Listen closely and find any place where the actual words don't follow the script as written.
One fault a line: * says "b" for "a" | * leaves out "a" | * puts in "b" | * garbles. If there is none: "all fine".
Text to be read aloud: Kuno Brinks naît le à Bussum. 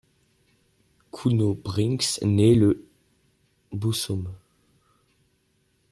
* leaves out "à"